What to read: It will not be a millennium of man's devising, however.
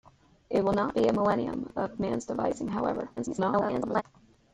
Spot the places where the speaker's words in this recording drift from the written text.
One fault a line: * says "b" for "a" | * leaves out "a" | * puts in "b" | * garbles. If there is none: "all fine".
* garbles